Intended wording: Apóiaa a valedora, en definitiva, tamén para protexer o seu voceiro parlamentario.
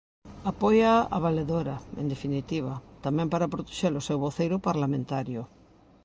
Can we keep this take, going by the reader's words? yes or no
yes